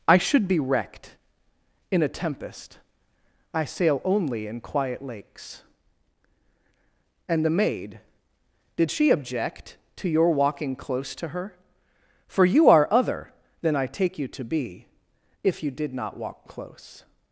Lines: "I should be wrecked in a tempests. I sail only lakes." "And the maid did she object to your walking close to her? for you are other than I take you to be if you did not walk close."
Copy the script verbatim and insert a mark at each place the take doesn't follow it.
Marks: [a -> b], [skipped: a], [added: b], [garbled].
"I should be wrecked in a [tempests. -> tempest] I sail only [added: in quiet] lakes." "And the maid did she object to your walking close to her? for you are other than I take you to be if you did not walk close."